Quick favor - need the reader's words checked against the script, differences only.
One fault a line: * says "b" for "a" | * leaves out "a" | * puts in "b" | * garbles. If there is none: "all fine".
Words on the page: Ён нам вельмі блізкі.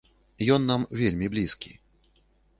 all fine